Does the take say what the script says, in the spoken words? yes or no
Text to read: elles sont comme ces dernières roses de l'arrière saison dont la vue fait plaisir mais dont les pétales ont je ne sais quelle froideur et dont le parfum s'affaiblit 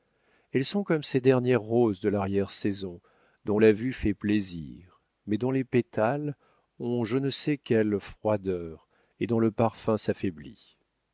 yes